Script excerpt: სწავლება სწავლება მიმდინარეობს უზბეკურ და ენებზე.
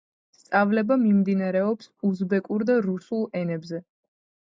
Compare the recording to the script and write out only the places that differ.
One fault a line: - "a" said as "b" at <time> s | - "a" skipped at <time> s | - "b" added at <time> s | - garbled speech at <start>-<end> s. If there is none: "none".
- "სწავლება" skipped at 1.0 s
- "რუსულ" added at 2.9 s